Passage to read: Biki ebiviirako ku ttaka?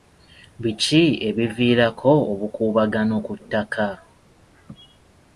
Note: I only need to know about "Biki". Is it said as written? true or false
true